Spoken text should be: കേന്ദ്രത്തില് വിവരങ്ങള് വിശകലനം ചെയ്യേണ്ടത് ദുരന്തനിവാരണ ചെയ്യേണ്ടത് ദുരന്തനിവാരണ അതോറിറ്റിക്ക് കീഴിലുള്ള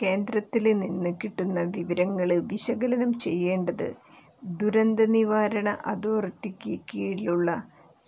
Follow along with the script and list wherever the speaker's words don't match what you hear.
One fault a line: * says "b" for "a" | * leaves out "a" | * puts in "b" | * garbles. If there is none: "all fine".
* puts in "നിന്ന് കിട്ടുന്ന"
* leaves out "ചെയ്യേണ്ടത് ദുരന്തനിവാരണ"